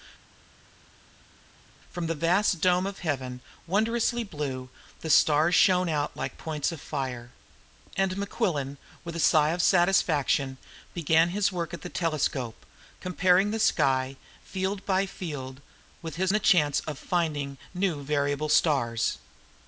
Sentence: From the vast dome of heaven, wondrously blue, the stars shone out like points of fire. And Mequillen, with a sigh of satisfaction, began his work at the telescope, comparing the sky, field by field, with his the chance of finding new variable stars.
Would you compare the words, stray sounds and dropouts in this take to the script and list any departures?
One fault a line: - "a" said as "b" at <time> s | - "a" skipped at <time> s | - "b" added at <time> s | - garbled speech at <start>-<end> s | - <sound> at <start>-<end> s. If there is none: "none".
none